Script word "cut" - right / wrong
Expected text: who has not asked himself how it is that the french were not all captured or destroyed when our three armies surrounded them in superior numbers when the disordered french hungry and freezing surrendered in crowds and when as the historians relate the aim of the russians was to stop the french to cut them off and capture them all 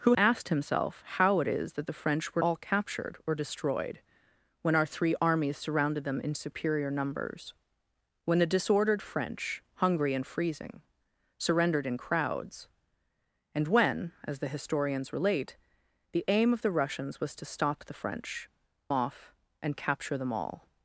wrong